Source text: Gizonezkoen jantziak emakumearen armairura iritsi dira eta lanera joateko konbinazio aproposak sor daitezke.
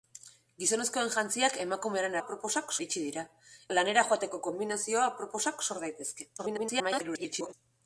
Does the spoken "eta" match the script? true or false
false